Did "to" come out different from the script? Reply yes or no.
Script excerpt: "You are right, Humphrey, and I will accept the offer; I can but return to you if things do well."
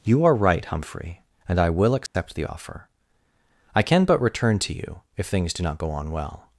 no